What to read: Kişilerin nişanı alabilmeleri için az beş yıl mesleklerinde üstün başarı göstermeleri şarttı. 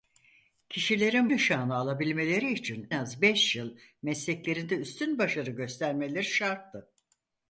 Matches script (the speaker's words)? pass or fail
pass